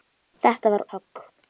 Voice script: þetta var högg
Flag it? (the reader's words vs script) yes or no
no